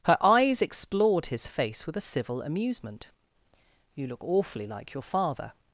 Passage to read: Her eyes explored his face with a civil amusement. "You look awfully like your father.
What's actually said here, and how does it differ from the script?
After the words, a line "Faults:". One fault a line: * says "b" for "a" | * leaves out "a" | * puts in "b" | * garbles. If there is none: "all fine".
Her eyes explored his face with a civil amusement. "You look awfully like your father.
Faults:
all fine